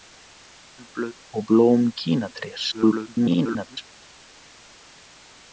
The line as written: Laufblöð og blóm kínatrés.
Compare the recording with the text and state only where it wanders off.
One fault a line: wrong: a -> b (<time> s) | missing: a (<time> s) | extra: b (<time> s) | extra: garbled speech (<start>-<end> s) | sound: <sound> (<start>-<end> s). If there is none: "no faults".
extra: garbled speech (2.7-3.8 s)